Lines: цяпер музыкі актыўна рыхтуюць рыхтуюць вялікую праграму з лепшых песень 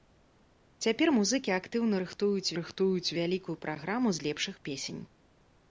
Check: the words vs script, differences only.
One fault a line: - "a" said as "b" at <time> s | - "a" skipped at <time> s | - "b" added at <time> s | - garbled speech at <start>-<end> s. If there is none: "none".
none